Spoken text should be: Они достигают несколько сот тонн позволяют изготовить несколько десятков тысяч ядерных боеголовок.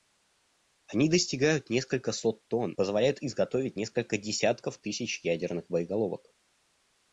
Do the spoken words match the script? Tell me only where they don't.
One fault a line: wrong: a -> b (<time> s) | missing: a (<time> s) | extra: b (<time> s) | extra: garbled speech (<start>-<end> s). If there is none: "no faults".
no faults